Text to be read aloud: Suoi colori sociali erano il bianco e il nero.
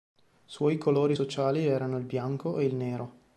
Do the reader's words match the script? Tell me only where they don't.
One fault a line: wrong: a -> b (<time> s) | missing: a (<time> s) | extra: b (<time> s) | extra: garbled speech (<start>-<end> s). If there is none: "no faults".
no faults